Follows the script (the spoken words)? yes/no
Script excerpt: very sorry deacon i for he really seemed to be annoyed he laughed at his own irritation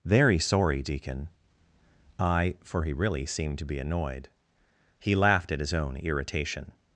yes